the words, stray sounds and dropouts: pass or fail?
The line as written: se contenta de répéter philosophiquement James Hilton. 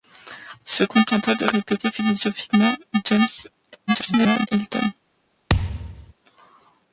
fail